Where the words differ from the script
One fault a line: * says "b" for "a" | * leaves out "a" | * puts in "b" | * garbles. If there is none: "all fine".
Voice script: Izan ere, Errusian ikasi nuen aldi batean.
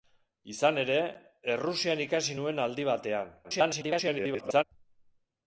* garbles